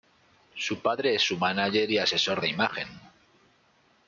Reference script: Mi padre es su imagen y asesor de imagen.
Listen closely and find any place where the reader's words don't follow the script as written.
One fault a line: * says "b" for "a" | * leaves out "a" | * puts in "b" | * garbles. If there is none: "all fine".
* says "Su" for "Mi"
* says "mánager" for "imagen"